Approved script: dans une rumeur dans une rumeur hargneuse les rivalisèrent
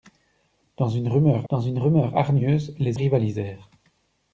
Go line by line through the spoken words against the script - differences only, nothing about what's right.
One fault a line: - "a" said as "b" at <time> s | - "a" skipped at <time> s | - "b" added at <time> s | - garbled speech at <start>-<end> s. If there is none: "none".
none